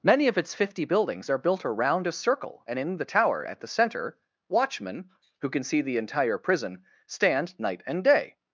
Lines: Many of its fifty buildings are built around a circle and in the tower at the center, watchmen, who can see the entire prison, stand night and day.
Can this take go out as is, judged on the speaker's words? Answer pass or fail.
pass